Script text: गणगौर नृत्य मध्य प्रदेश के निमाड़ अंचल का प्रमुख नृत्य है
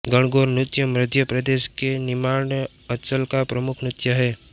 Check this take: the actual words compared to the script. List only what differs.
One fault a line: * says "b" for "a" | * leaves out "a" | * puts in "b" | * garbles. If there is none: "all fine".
all fine